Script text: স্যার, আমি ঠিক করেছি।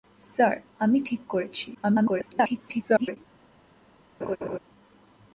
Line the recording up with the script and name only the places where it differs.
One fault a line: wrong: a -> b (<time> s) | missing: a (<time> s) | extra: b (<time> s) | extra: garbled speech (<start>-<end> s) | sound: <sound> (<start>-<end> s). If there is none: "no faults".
extra: garbled speech (1.7-3.2 s)
sound: laugh (4.2-4.6 s)